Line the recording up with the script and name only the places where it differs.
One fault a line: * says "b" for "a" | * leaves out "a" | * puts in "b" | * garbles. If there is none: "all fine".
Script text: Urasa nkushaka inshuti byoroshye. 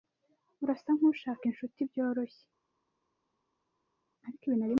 all fine